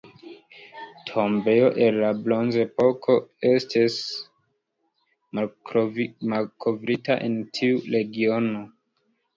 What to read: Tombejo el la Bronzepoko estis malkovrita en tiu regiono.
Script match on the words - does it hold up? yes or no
yes